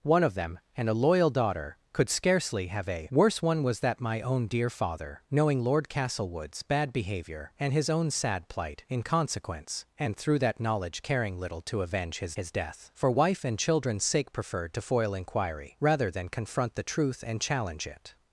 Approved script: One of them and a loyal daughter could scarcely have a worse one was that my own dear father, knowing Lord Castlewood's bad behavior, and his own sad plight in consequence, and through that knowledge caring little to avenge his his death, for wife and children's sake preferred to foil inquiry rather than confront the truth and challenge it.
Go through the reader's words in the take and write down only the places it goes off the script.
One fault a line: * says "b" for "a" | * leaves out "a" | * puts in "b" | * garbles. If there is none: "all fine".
all fine